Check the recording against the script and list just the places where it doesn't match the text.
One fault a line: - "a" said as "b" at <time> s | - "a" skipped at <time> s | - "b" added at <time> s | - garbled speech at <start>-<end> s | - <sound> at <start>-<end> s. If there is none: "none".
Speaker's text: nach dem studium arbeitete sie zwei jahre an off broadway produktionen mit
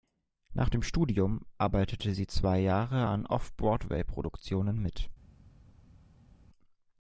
none